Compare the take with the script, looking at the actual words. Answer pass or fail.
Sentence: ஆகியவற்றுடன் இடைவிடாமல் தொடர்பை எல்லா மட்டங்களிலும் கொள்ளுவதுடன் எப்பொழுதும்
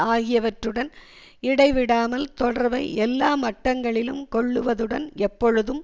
pass